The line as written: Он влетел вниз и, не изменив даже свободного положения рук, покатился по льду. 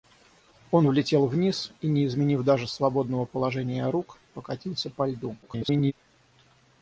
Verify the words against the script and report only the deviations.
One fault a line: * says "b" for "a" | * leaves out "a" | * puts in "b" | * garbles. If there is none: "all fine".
* garbles